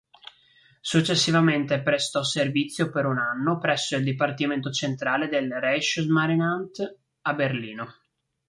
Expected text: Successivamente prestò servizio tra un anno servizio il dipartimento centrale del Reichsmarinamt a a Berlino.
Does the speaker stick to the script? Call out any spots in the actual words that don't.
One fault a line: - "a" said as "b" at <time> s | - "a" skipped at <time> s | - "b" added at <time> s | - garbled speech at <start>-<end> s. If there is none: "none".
- "tra" said as "per" at 2.9 s
- "servizio" said as "presso" at 3.6 s
- "a" skipped at 7.3 s